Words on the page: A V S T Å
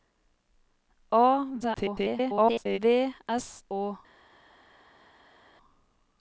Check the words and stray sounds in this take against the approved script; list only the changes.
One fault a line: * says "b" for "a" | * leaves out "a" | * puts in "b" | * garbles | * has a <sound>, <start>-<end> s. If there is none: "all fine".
* garbles
* leaves out "T"